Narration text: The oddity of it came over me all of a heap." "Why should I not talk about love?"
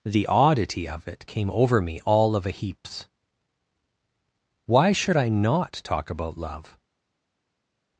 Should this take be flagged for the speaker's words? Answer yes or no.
yes